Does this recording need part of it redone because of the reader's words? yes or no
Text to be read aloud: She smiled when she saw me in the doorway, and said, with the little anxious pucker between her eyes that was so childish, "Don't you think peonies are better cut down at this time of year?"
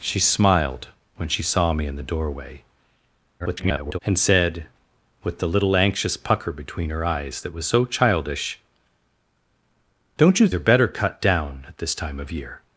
yes